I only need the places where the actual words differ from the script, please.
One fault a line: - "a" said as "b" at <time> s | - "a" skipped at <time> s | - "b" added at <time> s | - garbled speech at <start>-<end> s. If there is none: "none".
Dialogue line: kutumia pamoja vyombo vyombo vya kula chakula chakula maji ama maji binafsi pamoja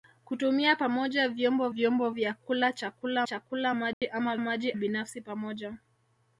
none